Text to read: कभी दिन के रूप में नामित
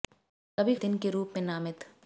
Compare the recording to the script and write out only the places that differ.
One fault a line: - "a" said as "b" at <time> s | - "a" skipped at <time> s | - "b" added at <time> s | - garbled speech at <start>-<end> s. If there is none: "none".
none